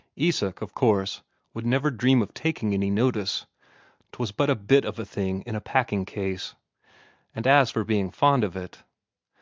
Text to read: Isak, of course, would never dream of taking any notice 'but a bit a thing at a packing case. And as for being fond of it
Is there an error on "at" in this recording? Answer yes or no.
yes